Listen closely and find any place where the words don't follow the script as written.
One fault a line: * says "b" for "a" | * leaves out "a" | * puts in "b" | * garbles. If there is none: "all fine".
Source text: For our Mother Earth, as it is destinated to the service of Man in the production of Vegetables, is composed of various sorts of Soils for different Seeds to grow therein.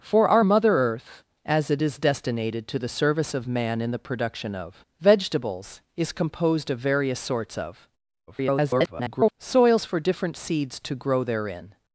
* garbles